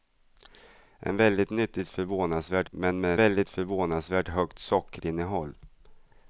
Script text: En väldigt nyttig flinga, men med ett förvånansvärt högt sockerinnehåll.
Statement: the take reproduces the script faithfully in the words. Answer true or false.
false